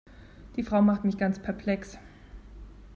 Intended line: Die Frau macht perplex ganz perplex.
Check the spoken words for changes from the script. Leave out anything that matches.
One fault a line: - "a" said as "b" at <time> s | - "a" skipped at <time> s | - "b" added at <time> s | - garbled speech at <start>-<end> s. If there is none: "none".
- "perplex" said as "mich" at 1.1 s